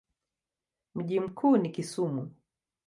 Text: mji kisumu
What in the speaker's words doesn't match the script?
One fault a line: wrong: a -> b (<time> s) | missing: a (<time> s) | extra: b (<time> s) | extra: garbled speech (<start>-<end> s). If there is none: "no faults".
extra: mkuu ni (1.2 s)